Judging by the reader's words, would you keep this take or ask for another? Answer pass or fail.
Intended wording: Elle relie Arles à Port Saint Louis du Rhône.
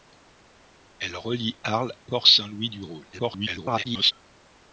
fail